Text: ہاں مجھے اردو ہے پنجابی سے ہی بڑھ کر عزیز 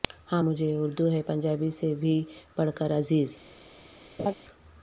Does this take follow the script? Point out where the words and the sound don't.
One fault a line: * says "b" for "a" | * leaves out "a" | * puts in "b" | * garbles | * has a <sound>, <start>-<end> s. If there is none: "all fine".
* says "بھی" for "ہی"
* has a laugh, 4.2-4.3 s